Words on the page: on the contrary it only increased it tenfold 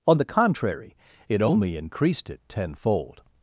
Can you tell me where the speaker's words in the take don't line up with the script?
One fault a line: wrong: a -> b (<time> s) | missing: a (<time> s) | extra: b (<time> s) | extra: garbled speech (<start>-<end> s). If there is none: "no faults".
no faults